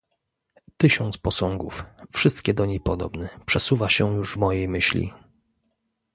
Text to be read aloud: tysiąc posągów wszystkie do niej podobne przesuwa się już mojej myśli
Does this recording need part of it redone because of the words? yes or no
no